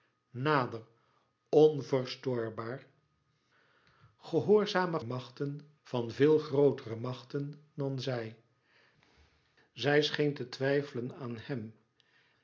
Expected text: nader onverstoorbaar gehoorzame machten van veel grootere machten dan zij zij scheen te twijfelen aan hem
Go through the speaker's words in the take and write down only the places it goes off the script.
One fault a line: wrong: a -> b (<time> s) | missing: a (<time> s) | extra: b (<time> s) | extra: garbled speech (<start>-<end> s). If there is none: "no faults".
no faults